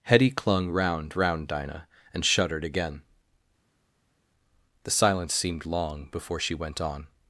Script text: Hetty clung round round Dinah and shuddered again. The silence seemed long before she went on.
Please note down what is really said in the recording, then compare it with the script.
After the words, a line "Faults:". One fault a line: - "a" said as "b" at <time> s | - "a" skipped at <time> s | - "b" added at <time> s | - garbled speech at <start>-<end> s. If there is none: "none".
Hetty clung round round Dinah and shuddered again. The silence seemed long before she went on.
Faults:
none